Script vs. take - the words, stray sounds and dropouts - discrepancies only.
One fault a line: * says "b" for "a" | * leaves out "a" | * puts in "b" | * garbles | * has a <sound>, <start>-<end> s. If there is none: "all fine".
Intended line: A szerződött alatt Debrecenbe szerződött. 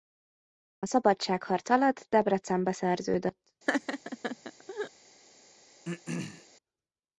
* says "szabadságharc" for "szerződött"
* has a laugh, 3.7-4.9 s
* has a throat clearing, 5.9-6.5 s